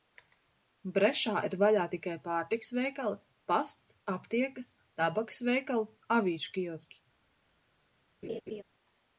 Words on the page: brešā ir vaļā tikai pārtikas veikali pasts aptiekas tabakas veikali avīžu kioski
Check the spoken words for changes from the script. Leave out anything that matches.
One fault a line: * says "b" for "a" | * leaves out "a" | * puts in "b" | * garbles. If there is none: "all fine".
all fine